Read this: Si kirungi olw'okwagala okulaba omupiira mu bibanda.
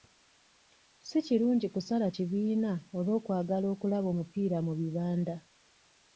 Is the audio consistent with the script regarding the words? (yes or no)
no